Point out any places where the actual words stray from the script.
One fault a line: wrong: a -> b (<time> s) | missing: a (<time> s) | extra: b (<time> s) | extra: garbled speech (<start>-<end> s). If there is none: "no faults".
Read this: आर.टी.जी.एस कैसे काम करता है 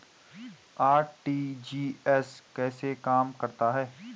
no faults